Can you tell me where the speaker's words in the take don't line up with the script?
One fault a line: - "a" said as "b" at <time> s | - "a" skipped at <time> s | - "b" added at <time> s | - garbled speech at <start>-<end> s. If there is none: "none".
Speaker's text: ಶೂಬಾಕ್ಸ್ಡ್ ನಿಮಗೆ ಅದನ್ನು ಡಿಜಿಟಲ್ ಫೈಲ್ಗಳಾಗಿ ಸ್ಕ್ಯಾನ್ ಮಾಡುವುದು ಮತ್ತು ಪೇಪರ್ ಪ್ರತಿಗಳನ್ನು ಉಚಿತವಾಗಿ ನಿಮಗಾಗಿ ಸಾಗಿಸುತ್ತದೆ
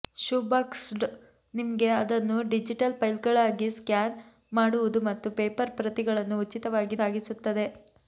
- "ನಿಮಗಾಗಿ" skipped at 7.0 s